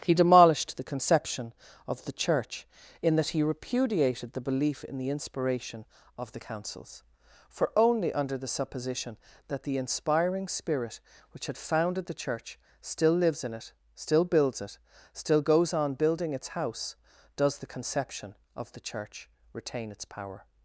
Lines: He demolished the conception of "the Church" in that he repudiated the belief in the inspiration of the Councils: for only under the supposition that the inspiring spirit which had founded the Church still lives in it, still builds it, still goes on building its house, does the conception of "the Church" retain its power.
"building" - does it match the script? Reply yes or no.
yes